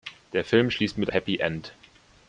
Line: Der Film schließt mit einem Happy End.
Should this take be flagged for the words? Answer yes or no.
yes